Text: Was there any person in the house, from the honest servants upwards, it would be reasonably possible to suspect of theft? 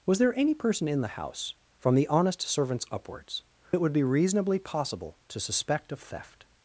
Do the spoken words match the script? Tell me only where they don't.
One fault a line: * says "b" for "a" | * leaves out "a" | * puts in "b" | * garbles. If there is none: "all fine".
all fine